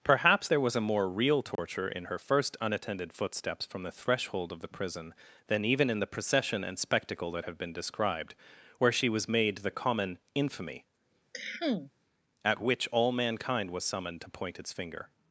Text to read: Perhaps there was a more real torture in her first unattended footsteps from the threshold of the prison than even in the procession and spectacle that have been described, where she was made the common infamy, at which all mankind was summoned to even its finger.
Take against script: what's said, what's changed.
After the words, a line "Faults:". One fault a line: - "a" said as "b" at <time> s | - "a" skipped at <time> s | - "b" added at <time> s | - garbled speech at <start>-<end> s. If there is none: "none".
Perhaps there was a more real torture in her first unattended footsteps from the threshold of the prison than even in the procession and spectacle that have been described, where she was made the common infamy, at which all mankind was summoned to point its finger.
Faults:
- "even" said as "point" at 14.3 s